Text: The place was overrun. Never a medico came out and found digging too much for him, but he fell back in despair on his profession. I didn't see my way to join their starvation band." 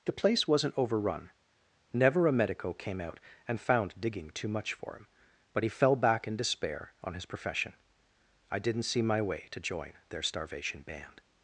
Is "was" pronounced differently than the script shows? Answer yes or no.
yes